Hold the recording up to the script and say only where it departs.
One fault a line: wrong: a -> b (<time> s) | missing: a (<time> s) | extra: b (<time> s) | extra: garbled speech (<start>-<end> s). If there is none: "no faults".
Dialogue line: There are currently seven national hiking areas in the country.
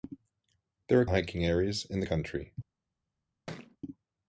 missing: currently seven national (1.1 s)